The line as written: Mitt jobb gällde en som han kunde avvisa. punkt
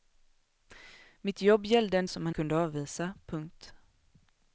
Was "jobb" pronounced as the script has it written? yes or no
yes